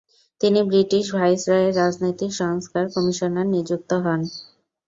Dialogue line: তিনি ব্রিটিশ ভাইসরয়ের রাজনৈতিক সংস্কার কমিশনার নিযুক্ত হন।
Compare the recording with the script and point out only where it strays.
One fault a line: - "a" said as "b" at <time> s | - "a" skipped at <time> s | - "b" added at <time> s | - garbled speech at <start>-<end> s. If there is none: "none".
none